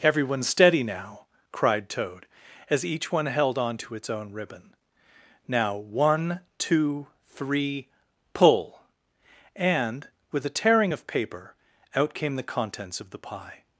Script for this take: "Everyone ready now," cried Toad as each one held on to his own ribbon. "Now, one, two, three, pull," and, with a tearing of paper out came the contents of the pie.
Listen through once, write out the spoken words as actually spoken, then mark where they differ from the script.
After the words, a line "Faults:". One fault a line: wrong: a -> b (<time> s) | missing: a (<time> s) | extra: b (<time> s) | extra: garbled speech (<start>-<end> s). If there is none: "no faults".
"Everyone steady now," cried Toad as each one held on to its own ribbon. "Now, one, two, three, pull," and, with a tearing of paper out came the contents of the pie.
Faults:
wrong: ready -> steady (0.4 s)
wrong: his -> its (4.0 s)